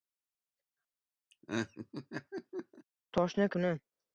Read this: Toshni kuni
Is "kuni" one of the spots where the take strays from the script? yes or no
no